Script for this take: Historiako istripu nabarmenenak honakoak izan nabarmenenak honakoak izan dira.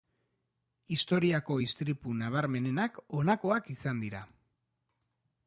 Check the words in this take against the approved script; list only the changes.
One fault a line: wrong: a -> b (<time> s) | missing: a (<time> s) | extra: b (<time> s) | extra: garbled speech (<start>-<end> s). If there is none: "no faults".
missing: nabarmenenak honakoak izan (4.0 s)